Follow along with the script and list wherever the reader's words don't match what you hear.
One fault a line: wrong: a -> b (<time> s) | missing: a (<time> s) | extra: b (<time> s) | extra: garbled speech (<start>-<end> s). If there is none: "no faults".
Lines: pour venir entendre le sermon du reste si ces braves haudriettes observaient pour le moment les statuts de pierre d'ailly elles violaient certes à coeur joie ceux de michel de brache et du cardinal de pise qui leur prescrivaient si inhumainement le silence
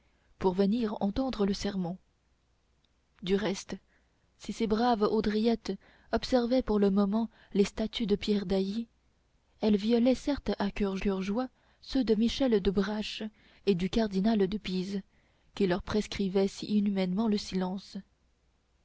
extra: coeur (11.0 s)